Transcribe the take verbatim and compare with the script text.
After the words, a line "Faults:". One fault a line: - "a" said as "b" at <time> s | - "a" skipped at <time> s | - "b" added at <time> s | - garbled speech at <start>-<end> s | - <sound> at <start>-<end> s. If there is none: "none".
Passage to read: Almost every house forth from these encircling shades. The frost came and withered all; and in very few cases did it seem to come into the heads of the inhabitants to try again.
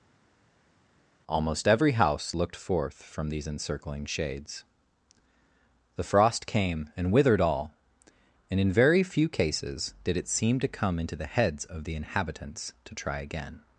Almost every house looked forth from these encircling shades. The frost came and withered all; and in very few cases did it seem to come into the heads of the inhabitants to try again.
Faults:
- "looked" added at 2.3 s